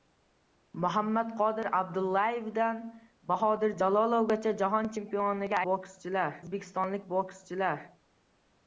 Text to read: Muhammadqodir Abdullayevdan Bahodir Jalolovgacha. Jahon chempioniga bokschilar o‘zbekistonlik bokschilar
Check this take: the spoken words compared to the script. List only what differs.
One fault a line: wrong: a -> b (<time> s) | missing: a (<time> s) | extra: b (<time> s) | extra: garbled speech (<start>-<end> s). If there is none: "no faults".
no faults